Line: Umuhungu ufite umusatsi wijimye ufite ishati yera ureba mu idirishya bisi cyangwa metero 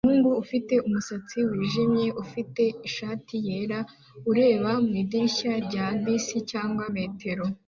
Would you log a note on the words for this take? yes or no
yes